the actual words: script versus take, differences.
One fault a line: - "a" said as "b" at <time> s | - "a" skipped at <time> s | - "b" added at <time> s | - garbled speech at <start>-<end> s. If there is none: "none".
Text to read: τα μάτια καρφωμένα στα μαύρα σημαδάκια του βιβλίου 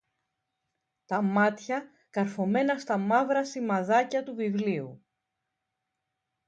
none